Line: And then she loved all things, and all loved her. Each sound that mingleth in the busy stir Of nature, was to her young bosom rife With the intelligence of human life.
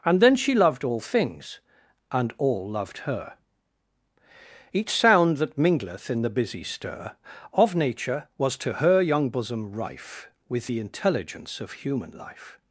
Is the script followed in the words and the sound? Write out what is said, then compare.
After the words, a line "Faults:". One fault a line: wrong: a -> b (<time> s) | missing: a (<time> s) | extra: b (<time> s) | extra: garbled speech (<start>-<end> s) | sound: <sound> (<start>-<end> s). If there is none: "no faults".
And then she loved all things, and all loved her. Each sound that mingleth in the busy stir Of nature, was to her young bosom rife With the intelligence of human life.
Faults:
no faults